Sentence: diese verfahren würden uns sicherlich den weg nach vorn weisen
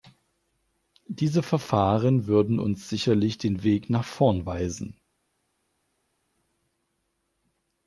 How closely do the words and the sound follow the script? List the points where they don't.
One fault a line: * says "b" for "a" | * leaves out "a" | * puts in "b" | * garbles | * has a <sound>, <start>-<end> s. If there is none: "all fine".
all fine